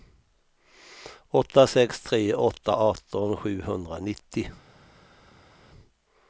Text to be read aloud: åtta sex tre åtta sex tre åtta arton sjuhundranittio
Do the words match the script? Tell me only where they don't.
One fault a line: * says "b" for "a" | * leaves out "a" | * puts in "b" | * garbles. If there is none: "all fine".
* leaves out "sex tre åtta"